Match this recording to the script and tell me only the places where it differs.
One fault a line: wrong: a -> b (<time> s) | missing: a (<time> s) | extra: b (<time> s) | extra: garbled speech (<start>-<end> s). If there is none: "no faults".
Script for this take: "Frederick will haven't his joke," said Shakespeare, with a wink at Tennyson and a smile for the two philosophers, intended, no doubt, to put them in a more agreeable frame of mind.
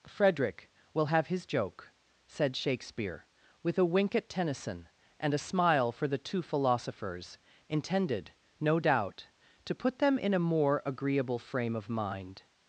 wrong: haven't -> have (1.0 s)